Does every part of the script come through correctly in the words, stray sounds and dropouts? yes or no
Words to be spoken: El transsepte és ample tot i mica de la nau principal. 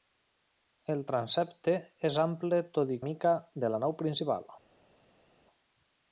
yes